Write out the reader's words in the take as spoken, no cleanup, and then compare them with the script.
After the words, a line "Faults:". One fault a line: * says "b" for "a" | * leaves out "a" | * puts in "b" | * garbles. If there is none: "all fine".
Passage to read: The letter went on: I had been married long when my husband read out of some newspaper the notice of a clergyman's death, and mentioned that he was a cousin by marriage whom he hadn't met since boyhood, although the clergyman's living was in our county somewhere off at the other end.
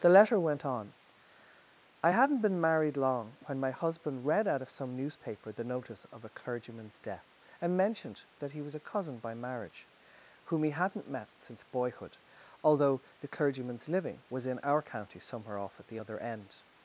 The letter went on: I hadn't been married long when my husband read out of some newspaper the notice of a clergyman's death, and mentioned that he was a cousin by marriage whom he hadn't met since boyhood, although the clergyman's living was in our county somewhere off at the other end.
Faults:
* says "hadn't" for "had"